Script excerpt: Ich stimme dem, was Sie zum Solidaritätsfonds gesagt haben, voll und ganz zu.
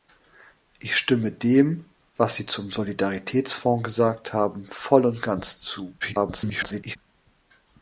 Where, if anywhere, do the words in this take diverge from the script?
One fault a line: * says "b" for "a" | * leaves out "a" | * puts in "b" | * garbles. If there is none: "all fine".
* garbles